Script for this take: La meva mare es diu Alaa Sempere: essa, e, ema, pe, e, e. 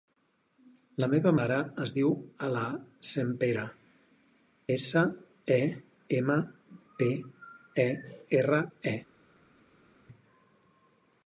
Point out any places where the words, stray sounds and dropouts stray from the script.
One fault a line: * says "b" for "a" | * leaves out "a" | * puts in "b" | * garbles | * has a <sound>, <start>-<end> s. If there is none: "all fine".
* puts in "erra"